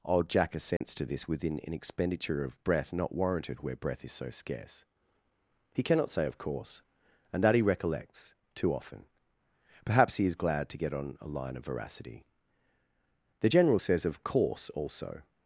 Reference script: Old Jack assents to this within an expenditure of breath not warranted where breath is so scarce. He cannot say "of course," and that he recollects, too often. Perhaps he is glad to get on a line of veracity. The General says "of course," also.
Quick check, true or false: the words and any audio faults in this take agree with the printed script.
false